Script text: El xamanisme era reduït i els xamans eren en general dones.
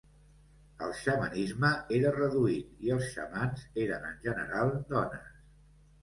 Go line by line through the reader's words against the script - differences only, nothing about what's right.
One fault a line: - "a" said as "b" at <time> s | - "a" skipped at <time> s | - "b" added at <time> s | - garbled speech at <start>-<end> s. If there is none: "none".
none